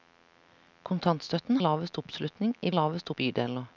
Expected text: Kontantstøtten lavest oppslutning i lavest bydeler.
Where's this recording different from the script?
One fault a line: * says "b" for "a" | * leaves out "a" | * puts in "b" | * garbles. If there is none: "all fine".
all fine